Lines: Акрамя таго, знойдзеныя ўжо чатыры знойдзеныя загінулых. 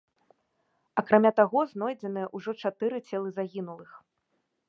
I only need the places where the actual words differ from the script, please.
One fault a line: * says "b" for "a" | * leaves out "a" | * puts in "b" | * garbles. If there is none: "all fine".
* says "целы" for "знойдзеныя"